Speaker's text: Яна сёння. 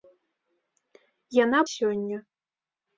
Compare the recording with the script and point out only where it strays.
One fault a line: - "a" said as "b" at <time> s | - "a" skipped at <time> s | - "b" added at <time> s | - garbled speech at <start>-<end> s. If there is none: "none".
none